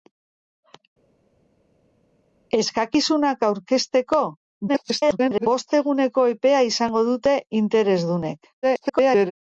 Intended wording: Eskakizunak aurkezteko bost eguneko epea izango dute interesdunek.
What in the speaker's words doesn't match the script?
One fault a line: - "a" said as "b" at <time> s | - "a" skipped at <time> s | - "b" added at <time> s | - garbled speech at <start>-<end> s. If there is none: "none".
- garbled speech at 4.7-5.5 s
- garbled speech at 8.6-9.3 s